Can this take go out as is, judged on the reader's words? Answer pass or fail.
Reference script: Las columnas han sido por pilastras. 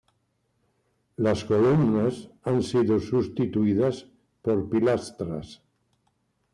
fail